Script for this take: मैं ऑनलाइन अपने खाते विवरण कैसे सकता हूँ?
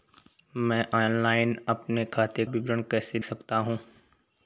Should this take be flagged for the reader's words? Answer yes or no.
no